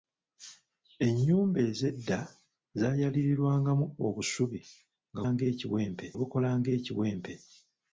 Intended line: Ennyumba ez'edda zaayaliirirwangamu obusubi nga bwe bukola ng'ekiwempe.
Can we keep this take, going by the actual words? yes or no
no